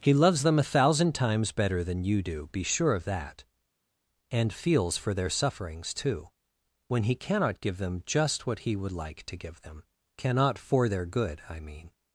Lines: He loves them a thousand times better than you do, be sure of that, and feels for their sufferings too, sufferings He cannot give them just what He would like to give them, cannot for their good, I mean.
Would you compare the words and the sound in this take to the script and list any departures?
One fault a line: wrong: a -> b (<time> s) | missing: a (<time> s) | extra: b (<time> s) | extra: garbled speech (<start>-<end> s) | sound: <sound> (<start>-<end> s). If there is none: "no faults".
wrong: sufferings -> when (6.9 s)